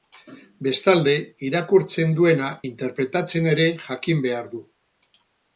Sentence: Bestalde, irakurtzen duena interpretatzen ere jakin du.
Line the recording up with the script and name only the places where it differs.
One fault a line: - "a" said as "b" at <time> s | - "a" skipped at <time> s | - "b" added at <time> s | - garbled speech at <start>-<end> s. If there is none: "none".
- "behar" added at 4.3 s